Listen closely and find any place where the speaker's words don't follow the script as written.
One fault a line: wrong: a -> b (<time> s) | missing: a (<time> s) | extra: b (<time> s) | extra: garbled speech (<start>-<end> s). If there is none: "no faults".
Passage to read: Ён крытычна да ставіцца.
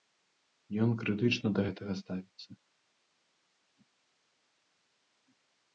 extra: гэтага (1.6 s)